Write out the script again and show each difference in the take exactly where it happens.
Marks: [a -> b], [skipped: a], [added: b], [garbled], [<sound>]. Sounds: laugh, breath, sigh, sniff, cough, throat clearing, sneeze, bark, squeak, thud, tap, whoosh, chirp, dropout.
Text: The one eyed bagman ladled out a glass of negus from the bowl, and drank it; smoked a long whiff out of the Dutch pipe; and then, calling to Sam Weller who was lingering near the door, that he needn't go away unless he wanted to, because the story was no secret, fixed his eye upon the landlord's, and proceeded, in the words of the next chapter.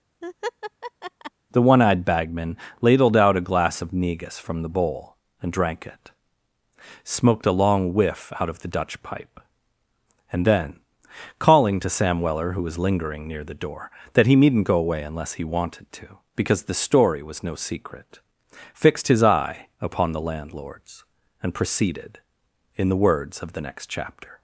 [laugh] The one eyed bagman ladled out a glass of negus from the bowl, and drank it; smoked a long whiff out of the Dutch pipe; and then, calling to Sam Weller who was lingering near the door, that he needn't go away unless he wanted to, because the story was no secret, fixed his eye upon the landlord's, and proceeded, in the words of the next chapter.